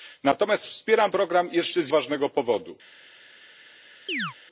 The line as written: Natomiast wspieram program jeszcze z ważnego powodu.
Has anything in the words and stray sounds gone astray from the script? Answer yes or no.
yes